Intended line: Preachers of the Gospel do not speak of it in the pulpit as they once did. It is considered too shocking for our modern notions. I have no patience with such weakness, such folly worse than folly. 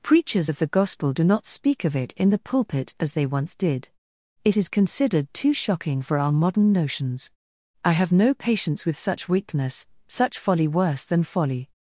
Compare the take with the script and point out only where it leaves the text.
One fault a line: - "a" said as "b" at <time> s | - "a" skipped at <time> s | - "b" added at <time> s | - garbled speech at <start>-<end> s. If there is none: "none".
none